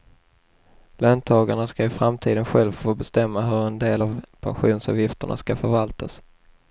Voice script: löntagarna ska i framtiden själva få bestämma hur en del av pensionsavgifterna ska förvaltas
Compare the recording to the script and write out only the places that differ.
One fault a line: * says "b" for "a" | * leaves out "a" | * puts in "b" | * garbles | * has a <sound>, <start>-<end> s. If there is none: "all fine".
all fine